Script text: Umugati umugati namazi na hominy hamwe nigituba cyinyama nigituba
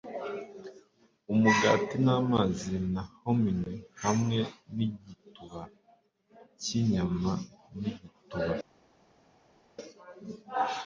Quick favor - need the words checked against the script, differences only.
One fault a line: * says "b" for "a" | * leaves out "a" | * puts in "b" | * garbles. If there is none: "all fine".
* leaves out "umugati"